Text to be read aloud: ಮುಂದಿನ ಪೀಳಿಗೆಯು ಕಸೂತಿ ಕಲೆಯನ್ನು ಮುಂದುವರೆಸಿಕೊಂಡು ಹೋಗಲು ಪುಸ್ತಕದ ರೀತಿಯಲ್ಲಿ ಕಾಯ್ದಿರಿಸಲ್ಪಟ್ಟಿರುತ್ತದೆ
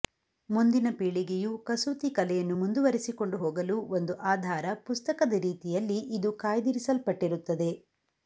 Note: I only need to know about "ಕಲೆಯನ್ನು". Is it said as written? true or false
true